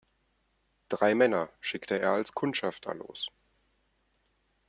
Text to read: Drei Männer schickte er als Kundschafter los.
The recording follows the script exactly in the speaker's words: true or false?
true